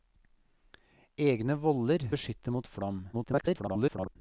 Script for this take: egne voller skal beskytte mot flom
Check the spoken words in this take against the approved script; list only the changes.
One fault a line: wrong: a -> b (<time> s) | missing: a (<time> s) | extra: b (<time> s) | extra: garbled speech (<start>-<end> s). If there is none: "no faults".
missing: skal (2.1 s)
extra: garbled speech (3.1-4.2 s)